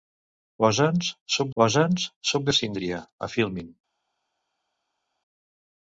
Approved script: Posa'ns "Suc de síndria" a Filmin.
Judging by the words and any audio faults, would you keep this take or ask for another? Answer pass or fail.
fail